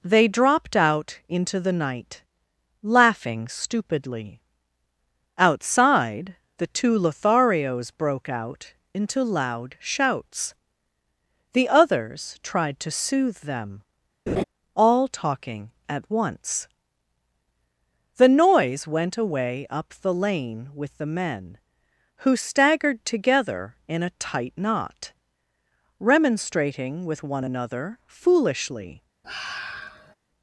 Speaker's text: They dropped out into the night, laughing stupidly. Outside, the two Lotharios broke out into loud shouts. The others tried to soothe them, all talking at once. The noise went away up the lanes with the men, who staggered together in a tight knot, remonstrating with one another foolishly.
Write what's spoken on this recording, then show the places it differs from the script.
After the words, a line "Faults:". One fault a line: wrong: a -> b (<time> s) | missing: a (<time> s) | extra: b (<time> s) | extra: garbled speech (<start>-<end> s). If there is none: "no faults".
They dropped out into the night, laughing stupidly. Outside, the two Lotharios broke out into loud shouts. The others tried to soothe them, all talking at once. The noise went away up the lane with the men, who staggered together in a tight knot, remonstrating with one another foolishly.
Faults:
wrong: lanes -> lane (20.1 s)